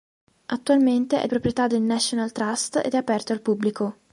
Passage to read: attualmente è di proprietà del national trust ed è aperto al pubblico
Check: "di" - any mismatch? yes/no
yes